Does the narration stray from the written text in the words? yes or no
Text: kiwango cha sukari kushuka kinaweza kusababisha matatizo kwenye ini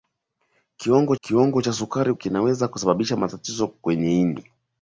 yes